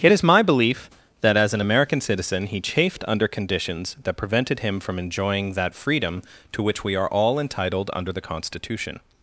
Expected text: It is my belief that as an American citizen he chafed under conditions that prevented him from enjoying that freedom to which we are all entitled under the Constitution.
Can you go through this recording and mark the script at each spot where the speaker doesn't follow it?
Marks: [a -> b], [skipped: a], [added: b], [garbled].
It is my belief that as an American citizen he chafed under conditions that prevented him from enjoying that freedom to which we are all entitled under the Constitution.